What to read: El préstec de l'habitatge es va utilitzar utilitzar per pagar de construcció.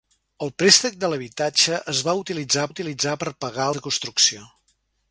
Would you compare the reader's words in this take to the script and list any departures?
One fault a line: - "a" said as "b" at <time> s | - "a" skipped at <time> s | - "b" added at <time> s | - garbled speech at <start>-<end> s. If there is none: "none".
none